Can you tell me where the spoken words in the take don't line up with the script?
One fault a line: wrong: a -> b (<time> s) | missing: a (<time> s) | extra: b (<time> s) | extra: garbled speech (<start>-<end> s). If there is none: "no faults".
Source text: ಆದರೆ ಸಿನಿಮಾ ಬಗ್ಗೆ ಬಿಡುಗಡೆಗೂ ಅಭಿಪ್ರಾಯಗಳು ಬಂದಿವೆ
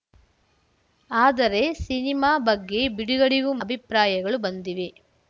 no faults